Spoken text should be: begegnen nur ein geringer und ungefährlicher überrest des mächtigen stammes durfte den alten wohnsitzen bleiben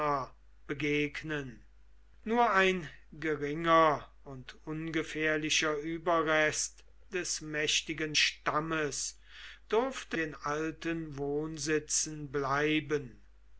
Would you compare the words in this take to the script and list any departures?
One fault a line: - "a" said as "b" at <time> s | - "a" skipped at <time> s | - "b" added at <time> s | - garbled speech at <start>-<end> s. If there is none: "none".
none